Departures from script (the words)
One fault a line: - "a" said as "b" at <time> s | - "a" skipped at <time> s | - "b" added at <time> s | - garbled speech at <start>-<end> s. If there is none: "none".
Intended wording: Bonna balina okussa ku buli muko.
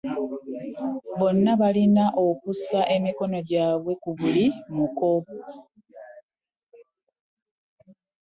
- "emikono gyabwe" added at 3.0 s